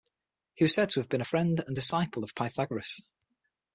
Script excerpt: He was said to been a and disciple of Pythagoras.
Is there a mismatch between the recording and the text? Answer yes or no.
yes